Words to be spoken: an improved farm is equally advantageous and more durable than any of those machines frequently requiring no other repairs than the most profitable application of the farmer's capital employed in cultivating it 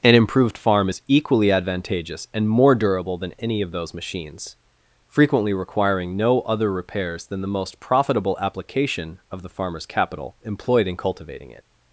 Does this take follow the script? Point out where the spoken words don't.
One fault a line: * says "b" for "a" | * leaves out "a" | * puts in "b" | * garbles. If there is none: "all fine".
all fine